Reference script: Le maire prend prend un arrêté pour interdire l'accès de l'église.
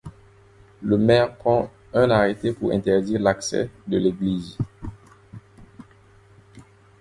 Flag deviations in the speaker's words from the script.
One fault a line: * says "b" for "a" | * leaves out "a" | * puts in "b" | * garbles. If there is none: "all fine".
* leaves out "prend"